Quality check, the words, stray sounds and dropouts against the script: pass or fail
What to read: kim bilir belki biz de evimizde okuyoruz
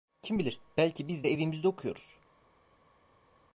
pass